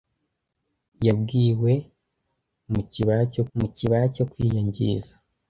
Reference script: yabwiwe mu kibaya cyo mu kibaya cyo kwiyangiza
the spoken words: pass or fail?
pass